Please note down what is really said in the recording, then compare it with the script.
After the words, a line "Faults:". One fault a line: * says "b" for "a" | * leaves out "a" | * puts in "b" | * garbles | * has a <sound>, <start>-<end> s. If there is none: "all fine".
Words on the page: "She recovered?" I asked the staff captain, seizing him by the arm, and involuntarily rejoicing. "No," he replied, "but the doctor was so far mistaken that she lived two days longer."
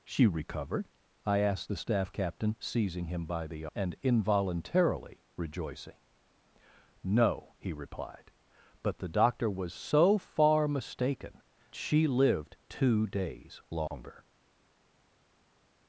"She recovered?" I asked the staff captain, seizing him by the and involuntarily rejoicing. "No," he replied, "but the doctor was so far mistaken she lived two days longer."
Faults:
* leaves out "arm"
* leaves out "that"